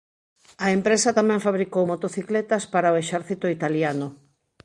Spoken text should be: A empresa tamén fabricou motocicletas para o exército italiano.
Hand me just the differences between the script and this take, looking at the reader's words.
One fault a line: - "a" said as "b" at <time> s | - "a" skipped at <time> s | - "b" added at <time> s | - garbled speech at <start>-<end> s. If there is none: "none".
none